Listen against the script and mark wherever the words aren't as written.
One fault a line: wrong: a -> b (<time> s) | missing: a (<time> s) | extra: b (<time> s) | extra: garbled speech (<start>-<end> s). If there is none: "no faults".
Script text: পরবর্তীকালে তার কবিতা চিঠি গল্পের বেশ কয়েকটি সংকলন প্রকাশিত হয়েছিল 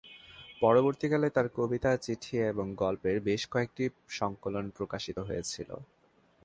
extra: এবং (2.5 s)